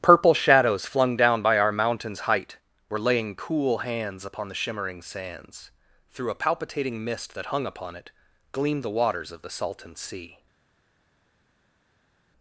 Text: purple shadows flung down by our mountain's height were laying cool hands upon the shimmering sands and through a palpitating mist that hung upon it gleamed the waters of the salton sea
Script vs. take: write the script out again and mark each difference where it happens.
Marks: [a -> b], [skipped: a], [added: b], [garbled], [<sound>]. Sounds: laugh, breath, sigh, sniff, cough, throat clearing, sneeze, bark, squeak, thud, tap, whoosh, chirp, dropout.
purple shadows flung down by our mountain's height were laying cool hands upon the shimmering sands [skipped: and] through a palpitating mist that hung upon it gleamed the waters of the salton sea